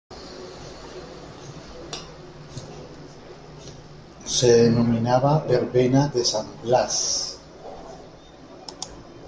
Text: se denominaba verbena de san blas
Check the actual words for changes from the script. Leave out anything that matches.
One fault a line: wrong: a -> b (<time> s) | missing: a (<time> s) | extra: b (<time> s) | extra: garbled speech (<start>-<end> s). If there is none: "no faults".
no faults